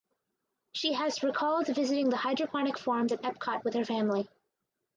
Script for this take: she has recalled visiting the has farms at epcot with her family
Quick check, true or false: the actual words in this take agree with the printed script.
false